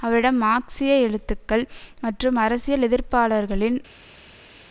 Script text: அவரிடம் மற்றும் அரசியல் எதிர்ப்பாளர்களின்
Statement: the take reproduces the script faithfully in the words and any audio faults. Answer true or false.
false